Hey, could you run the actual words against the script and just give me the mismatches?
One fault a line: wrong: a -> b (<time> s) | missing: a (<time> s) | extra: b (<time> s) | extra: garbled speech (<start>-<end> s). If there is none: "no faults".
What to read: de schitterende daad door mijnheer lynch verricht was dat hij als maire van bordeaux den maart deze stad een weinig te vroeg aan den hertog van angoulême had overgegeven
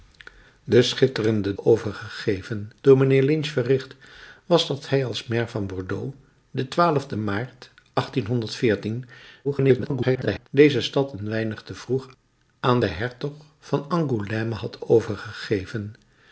wrong: daad -> overgegeven (1.6 s)
extra: garbled speech (9.4-10.5 s)